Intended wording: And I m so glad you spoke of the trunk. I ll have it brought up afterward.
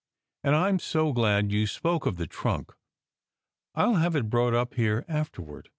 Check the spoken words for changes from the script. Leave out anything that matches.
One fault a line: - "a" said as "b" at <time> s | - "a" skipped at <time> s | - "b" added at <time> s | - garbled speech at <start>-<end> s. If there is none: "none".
- "here" added at 4.7 s